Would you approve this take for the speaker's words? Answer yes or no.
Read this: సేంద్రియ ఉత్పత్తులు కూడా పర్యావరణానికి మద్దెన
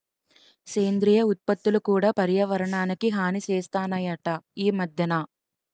no